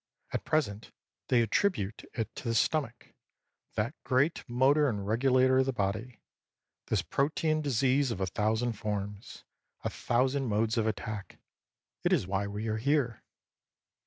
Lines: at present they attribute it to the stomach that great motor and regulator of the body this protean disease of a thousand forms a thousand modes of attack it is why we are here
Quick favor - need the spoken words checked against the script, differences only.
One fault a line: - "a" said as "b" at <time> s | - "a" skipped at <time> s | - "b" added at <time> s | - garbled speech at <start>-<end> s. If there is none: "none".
none